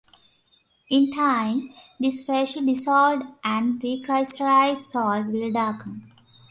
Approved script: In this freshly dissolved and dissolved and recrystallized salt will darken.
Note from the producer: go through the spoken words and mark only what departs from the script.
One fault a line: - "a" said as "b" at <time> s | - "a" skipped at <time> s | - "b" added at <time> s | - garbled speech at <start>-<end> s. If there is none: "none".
- "time" added at 1.1 s
- "dissolved and" skipped at 3.8 s